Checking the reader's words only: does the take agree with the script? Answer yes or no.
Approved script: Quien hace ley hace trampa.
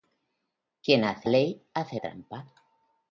yes